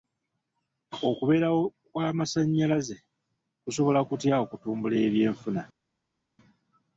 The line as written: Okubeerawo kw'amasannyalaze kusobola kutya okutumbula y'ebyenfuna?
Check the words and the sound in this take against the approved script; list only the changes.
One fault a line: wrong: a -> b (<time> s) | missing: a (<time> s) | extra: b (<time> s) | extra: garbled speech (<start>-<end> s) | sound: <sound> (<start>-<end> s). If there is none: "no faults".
no faults